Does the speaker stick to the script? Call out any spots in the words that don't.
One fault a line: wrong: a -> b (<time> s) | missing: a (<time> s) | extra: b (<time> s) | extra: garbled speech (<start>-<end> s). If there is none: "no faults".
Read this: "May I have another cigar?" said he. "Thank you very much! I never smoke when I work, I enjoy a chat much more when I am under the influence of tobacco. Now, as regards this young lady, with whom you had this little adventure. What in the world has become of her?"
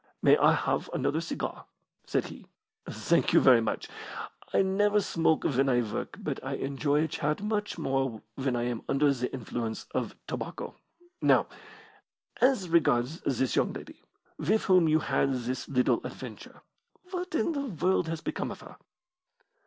extra: but (6.2 s)